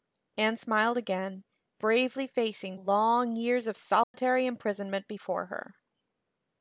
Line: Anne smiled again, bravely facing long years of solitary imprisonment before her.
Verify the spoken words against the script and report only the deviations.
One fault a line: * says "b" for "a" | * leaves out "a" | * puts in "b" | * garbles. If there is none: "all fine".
all fine